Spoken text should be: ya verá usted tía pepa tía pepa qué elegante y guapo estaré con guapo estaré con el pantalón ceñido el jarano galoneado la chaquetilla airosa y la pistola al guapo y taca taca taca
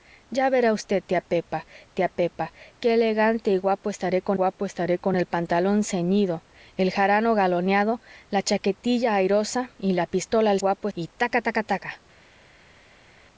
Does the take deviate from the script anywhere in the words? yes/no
no